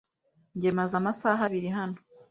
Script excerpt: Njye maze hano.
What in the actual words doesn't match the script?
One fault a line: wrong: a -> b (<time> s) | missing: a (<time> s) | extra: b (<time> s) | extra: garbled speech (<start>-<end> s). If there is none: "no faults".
extra: amasaha abiri (1.0 s)